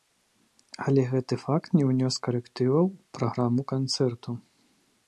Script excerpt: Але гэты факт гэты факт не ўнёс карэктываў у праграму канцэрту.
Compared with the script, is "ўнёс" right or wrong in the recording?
right